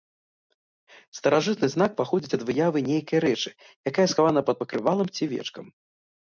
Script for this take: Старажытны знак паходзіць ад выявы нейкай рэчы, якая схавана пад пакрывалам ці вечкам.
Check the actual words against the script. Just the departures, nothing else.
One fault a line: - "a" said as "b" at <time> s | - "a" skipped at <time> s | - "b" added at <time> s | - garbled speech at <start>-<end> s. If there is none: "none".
none